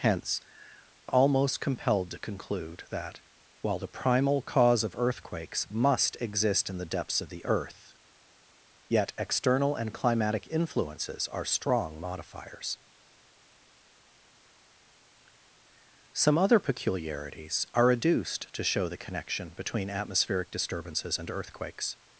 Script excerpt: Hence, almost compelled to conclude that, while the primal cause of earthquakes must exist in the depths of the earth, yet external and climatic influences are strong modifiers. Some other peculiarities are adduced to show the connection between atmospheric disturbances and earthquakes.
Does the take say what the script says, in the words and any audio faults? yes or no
yes